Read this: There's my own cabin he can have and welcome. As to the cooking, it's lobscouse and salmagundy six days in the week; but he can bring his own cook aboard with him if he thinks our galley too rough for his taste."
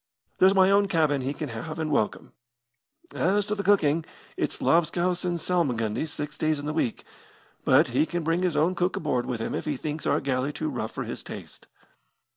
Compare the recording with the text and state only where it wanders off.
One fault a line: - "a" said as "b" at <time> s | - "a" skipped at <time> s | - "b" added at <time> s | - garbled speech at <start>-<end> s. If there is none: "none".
none